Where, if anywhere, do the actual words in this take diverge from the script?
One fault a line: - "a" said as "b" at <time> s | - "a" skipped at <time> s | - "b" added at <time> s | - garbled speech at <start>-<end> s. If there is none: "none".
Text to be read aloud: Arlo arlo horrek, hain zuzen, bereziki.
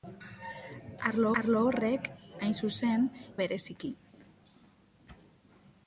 none